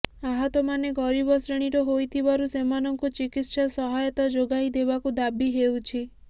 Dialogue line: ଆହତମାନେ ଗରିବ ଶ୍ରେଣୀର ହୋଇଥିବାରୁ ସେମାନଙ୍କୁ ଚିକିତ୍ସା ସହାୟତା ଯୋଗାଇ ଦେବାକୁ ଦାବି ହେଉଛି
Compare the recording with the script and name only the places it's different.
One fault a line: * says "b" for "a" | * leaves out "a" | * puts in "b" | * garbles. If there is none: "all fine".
all fine